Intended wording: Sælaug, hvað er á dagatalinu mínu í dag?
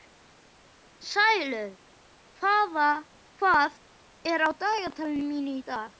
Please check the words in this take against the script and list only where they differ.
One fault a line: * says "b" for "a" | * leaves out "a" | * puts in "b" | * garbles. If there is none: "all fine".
all fine